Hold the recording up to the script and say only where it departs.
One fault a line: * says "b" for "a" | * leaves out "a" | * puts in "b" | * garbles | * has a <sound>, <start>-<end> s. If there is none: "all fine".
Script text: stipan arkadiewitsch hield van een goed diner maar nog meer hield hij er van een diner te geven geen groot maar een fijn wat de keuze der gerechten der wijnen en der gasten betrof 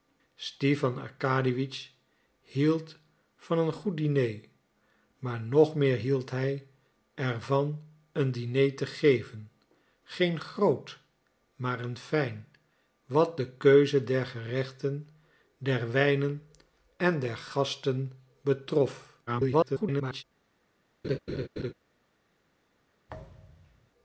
* garbles
* has a laugh, 21.0-21.7 s
* has a thud, 23.1-23.9 s